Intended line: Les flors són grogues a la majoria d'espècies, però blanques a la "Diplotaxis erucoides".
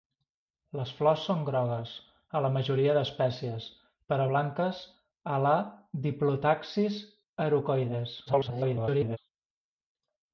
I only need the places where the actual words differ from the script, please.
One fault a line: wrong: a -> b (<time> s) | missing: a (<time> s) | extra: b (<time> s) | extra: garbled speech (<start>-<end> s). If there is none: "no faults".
extra: garbled speech (8.3-9.2 s)